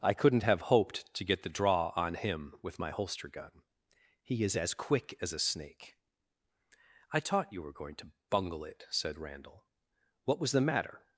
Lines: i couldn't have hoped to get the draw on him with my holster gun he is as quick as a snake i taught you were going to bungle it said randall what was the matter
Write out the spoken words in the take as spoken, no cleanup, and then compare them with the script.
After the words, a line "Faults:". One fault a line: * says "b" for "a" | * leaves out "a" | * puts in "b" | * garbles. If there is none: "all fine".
i couldn't have hoped to get the draw on him with my holster gun he is as quick as a snake i taught you were going to bungle it said randall what was the matter
Faults:
all fine